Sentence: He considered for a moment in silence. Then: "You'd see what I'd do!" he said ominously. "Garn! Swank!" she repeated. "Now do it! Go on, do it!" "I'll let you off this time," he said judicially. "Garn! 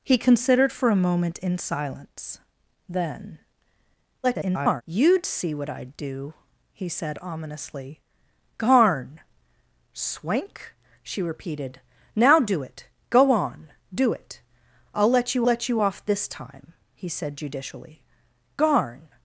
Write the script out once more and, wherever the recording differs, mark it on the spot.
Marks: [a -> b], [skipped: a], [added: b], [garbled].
He considered for a moment in silence. Then: [garbled] "You'd see what I'd do!" he said ominously. "Garn! Swank!" she repeated. "Now do it! Go on, do it!" "I'll let you [added: let you] off this time," he said judicially. "Garn!